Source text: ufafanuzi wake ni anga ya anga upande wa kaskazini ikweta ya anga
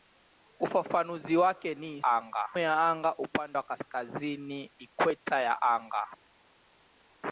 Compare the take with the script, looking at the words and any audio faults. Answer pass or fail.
pass